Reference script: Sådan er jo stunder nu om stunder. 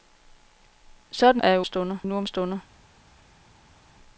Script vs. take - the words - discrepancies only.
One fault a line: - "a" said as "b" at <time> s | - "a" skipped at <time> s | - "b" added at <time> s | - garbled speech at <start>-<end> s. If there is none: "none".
none